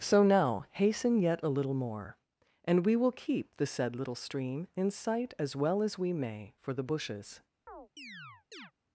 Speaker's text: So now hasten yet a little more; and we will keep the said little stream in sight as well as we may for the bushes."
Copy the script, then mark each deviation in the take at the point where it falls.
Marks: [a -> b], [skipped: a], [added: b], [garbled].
So now hasten yet a little more; and we will keep the said little stream in sight as well as we may for the bushes."